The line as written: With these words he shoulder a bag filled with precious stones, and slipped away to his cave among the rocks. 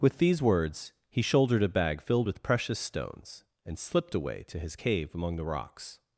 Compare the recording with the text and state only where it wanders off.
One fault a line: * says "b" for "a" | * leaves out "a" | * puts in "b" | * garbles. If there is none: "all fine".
* says "shouldered" for "shoulder"